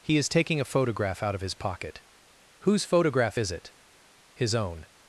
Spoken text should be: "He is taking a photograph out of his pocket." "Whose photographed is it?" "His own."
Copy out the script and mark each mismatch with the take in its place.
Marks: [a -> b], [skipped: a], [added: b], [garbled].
"He is taking a photograph out of his pocket." "Whose [photographed -> photograph] is it?" "His own."